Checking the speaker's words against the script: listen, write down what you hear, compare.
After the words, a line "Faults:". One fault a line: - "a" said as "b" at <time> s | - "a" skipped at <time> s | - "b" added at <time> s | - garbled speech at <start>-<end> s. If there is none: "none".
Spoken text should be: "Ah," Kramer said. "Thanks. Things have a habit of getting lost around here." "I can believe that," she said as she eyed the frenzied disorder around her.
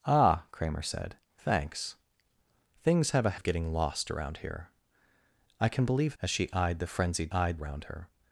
"Ah," Kramer said. "Thanks. Things have a of getting lost around here." "I can believe as she eyed the frenzied eyed around her.
Faults:
- "habit" skipped at 3.3 s
- "that she said" skipped at 6.1 s
- "disorder" said as "eyed" at 7.3 s